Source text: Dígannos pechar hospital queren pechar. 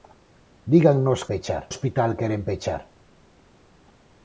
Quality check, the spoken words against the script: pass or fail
pass